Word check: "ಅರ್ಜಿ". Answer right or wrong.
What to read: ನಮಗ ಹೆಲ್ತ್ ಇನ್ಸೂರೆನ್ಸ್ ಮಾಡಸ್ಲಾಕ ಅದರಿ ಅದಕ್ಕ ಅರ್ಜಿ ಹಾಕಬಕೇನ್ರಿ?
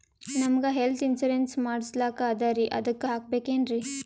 wrong